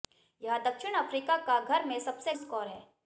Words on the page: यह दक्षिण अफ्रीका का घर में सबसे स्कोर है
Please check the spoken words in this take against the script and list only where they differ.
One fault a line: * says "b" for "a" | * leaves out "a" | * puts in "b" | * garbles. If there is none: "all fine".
all fine